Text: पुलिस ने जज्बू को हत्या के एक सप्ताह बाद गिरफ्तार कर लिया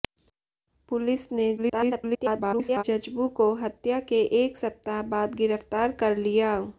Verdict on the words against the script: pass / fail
fail